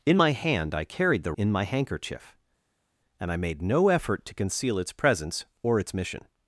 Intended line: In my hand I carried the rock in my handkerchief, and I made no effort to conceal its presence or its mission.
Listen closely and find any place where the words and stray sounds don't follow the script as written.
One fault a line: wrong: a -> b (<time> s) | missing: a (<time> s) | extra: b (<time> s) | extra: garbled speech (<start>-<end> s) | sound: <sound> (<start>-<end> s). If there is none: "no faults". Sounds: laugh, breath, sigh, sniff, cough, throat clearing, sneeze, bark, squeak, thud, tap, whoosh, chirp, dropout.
missing: rock (1.3 s)